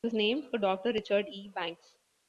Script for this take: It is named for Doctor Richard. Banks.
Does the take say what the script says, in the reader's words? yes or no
no